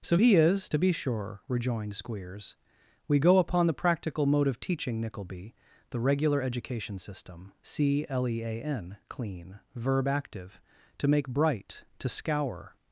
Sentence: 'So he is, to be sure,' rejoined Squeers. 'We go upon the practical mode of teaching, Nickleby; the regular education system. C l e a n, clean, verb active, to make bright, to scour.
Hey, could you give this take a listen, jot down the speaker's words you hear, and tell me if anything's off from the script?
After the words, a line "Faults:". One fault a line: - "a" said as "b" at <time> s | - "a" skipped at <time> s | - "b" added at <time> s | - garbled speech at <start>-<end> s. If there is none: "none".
'So he is, to be sure,' rejoined Squeers. 'We go upon the practical mode of teaching, Nickleby; the regular education system. C l e a n, clean, verb active, to make bright, to scour.
Faults:
none